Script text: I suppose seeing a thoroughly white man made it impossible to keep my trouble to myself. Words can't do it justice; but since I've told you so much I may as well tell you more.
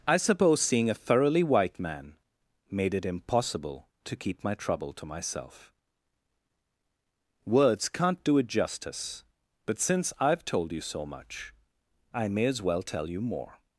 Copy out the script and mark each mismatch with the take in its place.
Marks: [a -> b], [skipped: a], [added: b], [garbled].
I suppose seeing a thoroughly white man made it impossible to keep my trouble to myself. Words can't do it justice; but since I've told you so much I may as well tell you more.